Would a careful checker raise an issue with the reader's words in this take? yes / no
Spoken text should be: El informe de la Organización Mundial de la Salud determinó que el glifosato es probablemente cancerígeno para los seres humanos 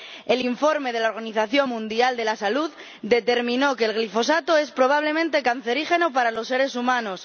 no